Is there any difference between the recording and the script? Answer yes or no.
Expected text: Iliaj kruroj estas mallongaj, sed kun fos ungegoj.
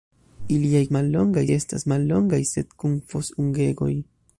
yes